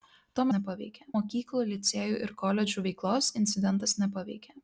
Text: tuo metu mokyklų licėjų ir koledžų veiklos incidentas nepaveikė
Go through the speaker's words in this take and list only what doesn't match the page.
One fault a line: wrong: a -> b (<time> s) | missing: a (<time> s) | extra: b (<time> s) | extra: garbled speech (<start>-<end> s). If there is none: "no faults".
wrong: metu -> nepaveikė (0.6 s)